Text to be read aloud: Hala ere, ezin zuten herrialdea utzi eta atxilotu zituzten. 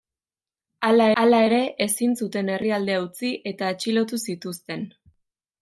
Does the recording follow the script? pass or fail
fail